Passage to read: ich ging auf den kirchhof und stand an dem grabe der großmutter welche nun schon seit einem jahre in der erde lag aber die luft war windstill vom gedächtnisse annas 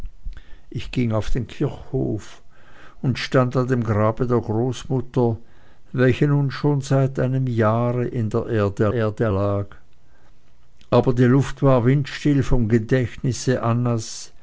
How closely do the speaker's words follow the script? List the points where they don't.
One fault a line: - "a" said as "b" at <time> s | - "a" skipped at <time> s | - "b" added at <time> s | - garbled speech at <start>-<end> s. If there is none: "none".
- "erde" added at 8.9 s